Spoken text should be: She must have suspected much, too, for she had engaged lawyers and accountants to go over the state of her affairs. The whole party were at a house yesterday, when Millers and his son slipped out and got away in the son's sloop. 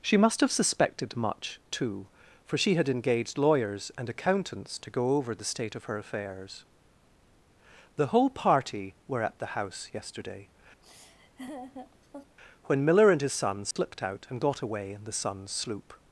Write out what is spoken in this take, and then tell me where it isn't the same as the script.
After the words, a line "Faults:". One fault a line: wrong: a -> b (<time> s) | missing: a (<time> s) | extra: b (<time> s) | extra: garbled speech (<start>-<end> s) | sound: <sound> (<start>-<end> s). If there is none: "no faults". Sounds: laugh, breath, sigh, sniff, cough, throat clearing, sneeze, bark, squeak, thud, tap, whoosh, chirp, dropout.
She must have suspected much, too, for she had engaged lawyers and accountants to go over the state of her affairs. The whole party were at the house yesterday, when Miller and his son slipped out and got away in the son's sloop.
Faults:
wrong: a -> the (9.4 s)
sound: laugh (10.8-12.4 s)
wrong: Millers -> Miller (12.9 s)
sound: dropout (13.7-13.8 s)